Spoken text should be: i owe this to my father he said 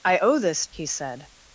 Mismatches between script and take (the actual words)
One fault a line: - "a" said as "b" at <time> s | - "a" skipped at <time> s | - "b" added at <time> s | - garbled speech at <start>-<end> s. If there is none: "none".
- "to my father" skipped at 0.6 s